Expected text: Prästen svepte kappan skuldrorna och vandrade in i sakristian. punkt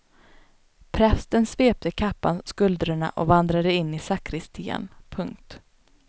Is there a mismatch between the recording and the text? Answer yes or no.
no